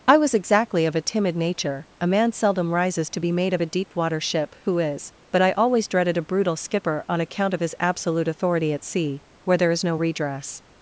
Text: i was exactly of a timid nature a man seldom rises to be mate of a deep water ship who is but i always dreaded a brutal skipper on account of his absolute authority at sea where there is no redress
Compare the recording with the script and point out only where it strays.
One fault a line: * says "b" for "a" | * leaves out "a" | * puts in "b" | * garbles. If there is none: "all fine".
all fine